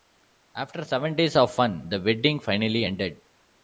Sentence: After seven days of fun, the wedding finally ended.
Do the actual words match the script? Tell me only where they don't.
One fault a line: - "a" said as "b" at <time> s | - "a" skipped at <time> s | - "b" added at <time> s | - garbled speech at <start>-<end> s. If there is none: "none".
none